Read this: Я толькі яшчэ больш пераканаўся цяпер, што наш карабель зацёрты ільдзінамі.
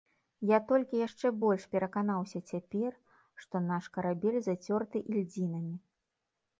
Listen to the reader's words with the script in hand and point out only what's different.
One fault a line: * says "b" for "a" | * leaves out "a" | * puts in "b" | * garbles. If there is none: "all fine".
all fine